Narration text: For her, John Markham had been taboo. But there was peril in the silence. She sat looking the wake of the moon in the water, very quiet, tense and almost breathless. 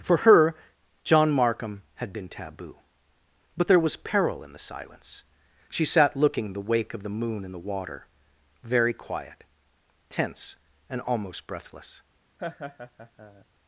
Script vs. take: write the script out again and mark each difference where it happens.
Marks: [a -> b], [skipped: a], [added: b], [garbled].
For her, John Markham had been taboo. But there was peril in the silence. She sat looking the wake of the moon in the water, very quiet, tense and almost breathless.